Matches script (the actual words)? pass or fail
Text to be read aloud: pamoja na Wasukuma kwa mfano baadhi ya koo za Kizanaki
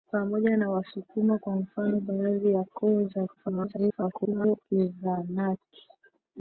fail